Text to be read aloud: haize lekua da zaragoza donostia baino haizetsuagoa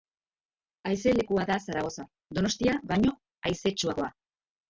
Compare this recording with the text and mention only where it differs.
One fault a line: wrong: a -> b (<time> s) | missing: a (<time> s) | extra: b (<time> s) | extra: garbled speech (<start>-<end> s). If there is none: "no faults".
no faults